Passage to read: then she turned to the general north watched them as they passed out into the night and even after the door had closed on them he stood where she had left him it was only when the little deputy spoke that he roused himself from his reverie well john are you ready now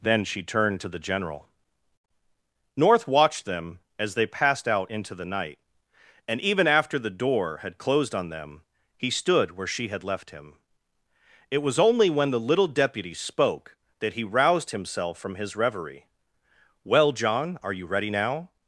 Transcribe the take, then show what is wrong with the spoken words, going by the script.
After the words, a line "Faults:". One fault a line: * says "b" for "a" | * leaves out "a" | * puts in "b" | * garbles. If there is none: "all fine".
then she turned to the general north watched them as they passed out into the night and even after the door had closed on them he stood where she had left him it was only when the little deputy spoke that he roused himself from his reverie well john are you ready now
Faults:
all fine